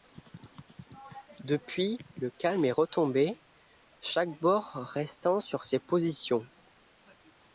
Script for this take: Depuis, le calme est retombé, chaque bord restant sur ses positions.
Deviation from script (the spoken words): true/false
false